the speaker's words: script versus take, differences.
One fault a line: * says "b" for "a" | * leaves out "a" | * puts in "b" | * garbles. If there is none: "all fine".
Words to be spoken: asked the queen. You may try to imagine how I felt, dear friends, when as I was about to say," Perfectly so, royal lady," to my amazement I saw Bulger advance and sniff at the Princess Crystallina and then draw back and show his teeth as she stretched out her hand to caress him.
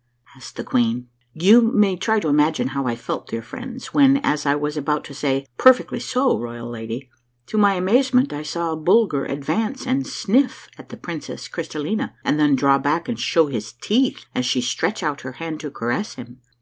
all fine